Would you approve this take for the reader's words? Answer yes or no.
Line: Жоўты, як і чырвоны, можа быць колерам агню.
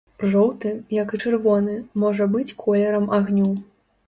yes